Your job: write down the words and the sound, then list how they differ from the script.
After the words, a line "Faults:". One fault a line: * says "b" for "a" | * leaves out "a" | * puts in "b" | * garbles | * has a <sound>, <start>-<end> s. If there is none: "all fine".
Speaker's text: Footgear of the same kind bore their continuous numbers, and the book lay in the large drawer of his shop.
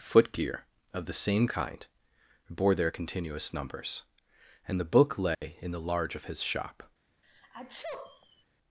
Footgear of the same kind bore their continuous numbers, and the book lay in the large of his shop.
Faults:
* has a dropout, 5.3-5.4 s
* leaves out "drawer"
* has a sneeze, 7.2-8.4 s